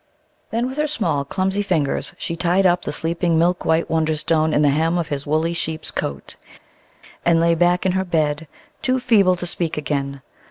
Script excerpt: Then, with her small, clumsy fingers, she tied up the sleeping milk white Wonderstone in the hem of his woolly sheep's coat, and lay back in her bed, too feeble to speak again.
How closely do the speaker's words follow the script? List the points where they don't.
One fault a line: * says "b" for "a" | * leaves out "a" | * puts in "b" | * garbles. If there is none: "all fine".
all fine